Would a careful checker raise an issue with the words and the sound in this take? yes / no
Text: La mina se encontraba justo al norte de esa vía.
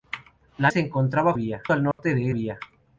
yes